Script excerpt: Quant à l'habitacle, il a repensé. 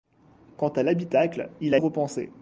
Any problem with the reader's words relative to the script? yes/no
no